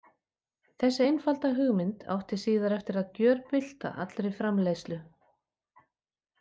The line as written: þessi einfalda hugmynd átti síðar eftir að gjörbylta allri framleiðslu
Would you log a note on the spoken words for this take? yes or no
no